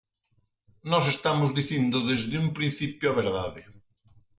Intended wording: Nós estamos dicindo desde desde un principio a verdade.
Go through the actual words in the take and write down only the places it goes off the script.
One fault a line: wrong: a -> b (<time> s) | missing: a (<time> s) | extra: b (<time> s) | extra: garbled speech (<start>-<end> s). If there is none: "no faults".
missing: desde (2.4 s)